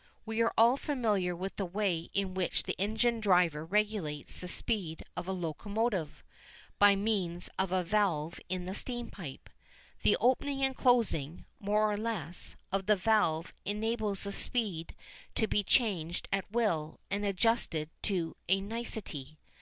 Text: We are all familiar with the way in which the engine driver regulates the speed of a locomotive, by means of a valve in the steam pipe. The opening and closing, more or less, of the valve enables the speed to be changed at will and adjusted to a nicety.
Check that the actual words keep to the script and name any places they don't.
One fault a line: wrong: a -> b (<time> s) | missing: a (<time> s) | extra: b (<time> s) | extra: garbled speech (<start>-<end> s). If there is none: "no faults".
no faults